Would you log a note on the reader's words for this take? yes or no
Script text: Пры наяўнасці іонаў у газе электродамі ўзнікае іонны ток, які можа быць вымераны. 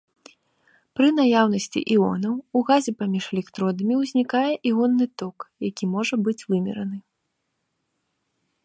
yes